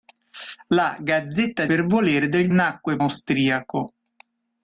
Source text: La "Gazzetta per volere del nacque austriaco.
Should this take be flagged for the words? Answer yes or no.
no